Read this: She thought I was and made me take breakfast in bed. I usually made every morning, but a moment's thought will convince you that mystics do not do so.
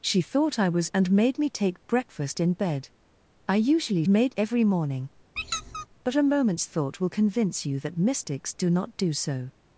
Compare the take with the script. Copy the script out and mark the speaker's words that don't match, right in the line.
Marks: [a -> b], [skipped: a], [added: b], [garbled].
She thought I was and made me take breakfast in bed. I usually made every morning, but a moment's thought will convince you that mystics do not do so.